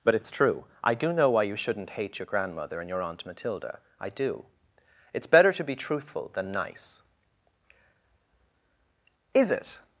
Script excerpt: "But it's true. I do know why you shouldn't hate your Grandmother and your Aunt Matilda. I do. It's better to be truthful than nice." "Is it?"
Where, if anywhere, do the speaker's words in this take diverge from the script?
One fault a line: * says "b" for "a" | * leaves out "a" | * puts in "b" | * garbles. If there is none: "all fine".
all fine